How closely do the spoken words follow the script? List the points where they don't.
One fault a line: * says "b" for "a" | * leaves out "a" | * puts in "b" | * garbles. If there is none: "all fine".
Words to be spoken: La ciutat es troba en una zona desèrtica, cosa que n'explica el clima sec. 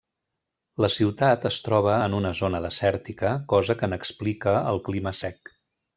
all fine